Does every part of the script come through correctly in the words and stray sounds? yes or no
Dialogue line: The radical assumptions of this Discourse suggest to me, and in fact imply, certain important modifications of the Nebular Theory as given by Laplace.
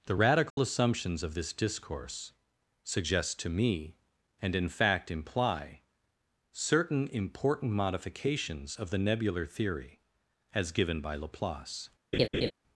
no